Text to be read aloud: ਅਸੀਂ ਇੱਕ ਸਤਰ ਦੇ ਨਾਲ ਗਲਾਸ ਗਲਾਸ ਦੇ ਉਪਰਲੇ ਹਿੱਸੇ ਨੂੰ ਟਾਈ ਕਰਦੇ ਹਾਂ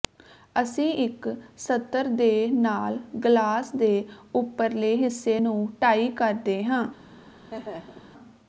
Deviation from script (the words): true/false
true